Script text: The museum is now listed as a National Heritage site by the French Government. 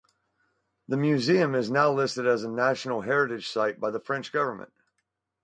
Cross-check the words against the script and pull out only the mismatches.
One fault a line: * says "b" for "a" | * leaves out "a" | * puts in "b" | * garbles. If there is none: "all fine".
all fine